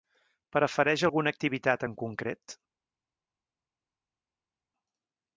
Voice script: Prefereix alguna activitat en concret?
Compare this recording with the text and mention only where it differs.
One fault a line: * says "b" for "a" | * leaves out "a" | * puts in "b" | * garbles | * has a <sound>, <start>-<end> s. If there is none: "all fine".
all fine